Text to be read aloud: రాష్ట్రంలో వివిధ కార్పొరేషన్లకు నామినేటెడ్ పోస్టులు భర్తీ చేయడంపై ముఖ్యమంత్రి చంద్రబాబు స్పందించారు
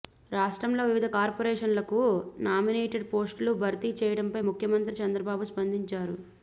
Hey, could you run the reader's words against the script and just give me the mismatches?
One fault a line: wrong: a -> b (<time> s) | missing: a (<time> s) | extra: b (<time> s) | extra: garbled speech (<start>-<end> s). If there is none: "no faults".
no faults